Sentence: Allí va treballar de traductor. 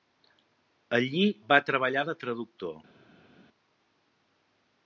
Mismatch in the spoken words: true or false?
false